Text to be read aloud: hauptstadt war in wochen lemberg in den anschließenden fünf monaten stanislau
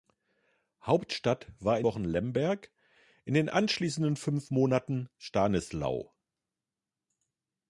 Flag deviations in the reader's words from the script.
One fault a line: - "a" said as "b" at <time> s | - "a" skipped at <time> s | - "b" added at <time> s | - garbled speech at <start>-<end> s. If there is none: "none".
none